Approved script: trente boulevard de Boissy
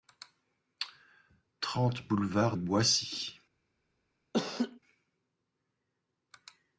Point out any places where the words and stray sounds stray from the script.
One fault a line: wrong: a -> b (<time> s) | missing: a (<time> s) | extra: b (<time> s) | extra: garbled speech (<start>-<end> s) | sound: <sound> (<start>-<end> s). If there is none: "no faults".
missing: de (2.6 s)
sound: laugh (4.3-4.8 s)